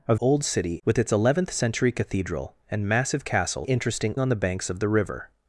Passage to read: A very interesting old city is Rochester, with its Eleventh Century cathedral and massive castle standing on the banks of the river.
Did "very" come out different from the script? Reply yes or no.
yes